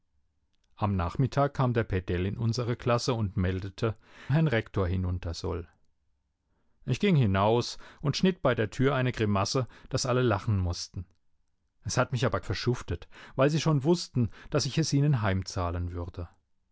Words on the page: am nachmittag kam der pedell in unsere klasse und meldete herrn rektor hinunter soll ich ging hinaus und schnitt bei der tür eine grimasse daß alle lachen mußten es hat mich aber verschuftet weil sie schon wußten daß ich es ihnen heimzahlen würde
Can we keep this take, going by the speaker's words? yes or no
yes